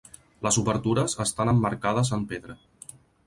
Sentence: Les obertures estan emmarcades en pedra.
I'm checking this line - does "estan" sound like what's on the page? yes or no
yes